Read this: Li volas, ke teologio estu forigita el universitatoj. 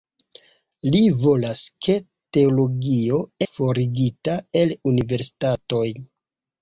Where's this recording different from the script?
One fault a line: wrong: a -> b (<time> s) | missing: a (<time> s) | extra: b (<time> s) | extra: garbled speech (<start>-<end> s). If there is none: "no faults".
missing: estu (3.2 s)